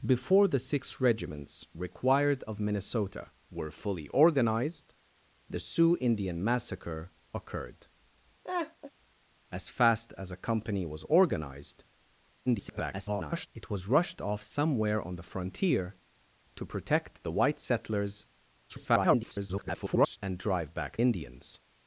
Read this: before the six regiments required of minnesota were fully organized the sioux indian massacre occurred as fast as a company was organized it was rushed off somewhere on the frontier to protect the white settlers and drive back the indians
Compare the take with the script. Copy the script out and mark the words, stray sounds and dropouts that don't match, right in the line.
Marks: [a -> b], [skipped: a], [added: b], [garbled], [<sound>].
before the six regiments required of minnesota were fully organized the sioux indian massacre occurred [laugh] as fast as a company was organized [garbled] it was rushed off somewhere on the frontier to protect the white settlers [garbled] and drive back [skipped: the] indians